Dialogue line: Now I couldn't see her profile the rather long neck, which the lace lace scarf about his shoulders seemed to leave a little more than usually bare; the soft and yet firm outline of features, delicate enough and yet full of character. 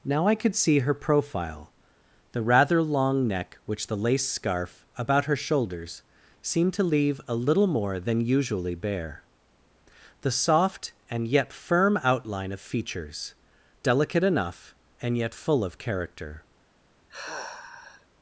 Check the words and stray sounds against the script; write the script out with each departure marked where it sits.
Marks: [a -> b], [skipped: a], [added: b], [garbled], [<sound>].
Now I [couldn't -> could] see her profile the rather long neck, which the lace [skipped: lace] scarf about [his -> her] shoulders seemed to leave a little more than usually bare; the soft and yet firm outline of features, delicate enough and yet full of character. [sigh]